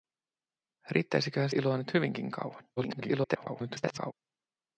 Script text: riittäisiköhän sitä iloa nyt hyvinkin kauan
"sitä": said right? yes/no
no